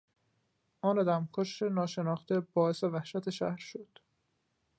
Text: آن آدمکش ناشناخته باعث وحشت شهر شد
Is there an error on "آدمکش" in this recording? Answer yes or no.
no